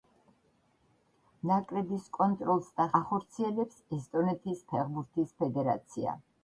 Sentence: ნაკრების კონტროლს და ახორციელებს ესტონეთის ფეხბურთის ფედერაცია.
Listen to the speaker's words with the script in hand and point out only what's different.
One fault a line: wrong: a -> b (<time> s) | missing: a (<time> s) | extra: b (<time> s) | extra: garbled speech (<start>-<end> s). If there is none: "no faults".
no faults